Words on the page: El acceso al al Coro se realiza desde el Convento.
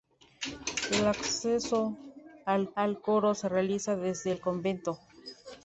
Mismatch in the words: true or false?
false